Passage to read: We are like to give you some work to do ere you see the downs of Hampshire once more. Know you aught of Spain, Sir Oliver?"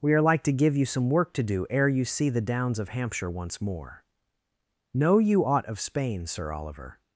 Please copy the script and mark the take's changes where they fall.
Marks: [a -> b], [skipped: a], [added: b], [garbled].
We are like to give you some work to do ere you see the downs of Hampshire once more. Know you aught of Spain, Sir Oliver?"